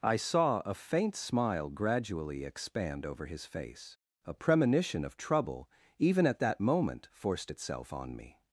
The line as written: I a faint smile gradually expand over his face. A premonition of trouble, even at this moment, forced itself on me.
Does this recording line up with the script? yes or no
no